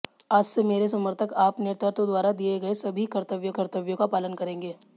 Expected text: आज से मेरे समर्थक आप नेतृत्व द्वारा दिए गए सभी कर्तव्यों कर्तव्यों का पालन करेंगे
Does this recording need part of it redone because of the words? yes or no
no